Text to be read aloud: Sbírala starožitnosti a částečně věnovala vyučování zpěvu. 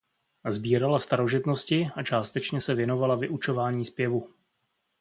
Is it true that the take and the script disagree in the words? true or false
true